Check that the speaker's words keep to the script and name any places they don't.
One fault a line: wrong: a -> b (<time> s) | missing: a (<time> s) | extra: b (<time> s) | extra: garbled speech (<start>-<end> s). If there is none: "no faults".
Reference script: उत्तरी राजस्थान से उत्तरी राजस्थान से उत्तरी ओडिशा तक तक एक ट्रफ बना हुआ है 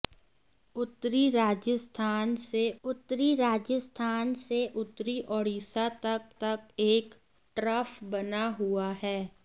no faults